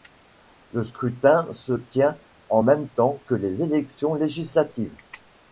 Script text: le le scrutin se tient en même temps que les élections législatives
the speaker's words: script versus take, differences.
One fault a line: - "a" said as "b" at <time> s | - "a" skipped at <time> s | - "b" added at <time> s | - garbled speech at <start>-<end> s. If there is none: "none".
- "le" skipped at 0.8 s